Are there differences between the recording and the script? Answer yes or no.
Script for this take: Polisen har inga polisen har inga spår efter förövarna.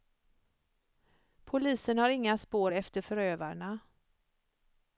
yes